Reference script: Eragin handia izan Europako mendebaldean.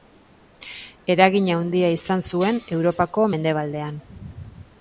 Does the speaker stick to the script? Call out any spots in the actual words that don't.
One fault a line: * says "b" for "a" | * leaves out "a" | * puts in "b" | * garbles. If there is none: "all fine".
* puts in "zuen"